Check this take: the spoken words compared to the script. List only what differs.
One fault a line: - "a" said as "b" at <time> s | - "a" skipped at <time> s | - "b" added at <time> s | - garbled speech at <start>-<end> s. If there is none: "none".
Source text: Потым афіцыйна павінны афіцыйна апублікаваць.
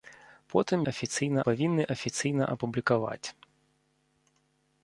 none